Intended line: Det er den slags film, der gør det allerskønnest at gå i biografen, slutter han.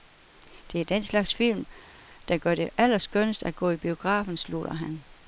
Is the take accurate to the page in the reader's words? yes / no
yes